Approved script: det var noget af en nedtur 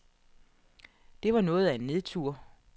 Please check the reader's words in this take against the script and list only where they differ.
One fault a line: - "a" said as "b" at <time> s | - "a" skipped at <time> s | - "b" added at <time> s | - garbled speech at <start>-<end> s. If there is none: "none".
none